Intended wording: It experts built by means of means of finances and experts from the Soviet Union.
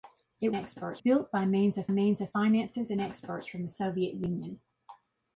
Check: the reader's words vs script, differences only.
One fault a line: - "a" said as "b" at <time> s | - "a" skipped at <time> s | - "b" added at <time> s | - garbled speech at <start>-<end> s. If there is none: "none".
none